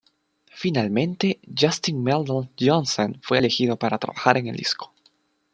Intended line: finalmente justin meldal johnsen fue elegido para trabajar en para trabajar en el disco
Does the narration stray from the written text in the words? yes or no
yes